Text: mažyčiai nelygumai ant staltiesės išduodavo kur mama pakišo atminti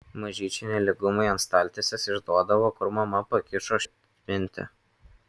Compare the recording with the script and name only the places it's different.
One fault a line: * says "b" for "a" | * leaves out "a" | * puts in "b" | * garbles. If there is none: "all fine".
all fine